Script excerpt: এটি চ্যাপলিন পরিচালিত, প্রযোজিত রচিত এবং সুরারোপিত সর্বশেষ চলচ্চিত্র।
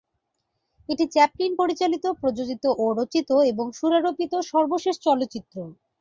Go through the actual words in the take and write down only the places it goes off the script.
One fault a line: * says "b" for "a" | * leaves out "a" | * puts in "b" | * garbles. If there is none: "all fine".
* puts in "ও"